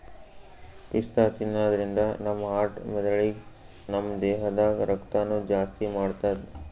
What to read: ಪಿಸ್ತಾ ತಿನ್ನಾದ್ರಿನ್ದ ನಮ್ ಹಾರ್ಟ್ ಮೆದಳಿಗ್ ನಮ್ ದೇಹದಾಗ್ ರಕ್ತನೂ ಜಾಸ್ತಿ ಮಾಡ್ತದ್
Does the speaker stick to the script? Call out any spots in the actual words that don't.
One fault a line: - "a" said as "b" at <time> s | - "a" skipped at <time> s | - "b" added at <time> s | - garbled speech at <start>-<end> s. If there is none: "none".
none